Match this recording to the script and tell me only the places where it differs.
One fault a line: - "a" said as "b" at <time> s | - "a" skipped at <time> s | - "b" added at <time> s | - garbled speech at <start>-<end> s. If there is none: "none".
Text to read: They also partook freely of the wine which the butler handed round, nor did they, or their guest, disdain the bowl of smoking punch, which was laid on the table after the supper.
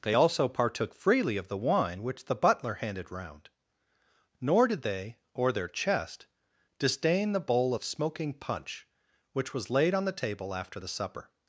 - "guest" said as "chest" at 5.7 s